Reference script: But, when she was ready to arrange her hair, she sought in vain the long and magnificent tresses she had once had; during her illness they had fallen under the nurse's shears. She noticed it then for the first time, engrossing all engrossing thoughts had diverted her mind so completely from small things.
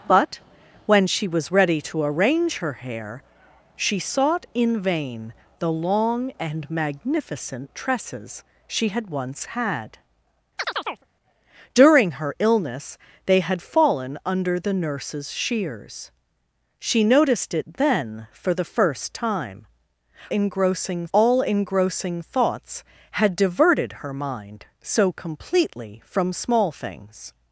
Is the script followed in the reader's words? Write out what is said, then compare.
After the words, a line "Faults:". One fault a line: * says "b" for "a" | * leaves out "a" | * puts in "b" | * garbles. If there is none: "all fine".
But, when she was ready to arrange her hair, she sought in vain the long and magnificent tresses she had once had; during her illness they had fallen under the nurse's shears. She noticed it then for the first time, engrossing all engrossing thoughts had diverted her mind so completely from small things.
Faults:
all fine